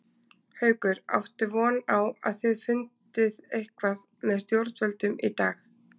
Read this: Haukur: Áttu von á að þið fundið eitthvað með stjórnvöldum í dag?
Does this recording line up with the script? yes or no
yes